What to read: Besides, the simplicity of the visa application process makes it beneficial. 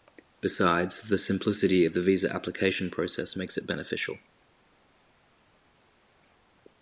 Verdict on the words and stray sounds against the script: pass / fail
pass